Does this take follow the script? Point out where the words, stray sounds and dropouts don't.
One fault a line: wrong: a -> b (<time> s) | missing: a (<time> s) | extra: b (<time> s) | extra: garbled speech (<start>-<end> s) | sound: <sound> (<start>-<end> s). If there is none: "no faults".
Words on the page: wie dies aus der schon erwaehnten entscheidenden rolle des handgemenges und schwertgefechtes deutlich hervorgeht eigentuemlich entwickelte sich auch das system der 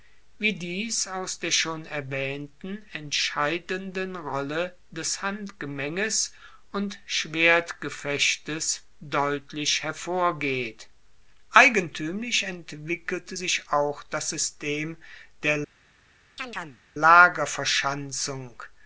sound: chirp (16.4-16.8 s)